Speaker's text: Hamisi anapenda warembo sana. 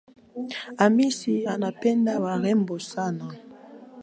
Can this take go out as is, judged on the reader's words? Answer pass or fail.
pass